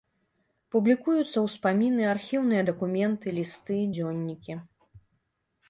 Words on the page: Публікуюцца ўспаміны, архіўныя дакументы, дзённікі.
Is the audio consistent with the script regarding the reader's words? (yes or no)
no